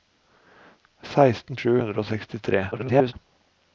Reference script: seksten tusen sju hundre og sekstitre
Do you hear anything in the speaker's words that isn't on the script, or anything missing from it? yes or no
yes